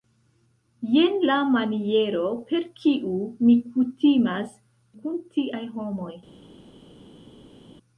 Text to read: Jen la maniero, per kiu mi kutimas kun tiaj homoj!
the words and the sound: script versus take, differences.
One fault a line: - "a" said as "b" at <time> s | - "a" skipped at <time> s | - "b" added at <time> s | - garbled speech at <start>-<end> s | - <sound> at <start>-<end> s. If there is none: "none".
none